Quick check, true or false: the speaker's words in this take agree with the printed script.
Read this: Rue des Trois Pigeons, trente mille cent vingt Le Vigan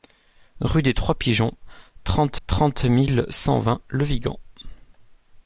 false